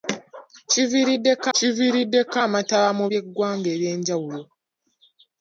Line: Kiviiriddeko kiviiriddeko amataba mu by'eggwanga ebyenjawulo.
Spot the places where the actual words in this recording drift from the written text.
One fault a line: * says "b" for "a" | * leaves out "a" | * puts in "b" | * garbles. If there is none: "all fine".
all fine